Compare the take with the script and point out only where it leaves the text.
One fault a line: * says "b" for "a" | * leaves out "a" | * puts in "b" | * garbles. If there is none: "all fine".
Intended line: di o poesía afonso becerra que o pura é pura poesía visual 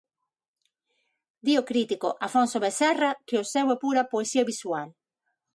* says "crítico" for "poesía"
* says "seu" for "pura"